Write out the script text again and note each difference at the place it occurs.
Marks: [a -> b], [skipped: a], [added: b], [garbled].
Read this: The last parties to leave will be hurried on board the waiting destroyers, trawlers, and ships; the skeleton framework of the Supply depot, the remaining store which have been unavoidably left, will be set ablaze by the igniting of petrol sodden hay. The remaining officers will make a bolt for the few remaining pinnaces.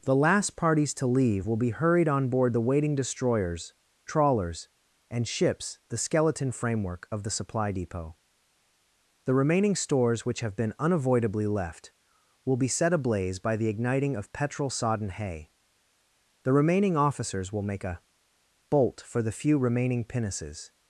The last parties to leave will be hurried on board the waiting destroyers, trawlers, and ships; the skeleton framework of the Supply depot, the remaining [store -> stores] which have been unavoidably left, will be set ablaze by the igniting of petrol sodden hay. The remaining officers will make a bolt for the few remaining pinnaces.